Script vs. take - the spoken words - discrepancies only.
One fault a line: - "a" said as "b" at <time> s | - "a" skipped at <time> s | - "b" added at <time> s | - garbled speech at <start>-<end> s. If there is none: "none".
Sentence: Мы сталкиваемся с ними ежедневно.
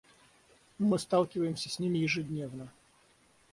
none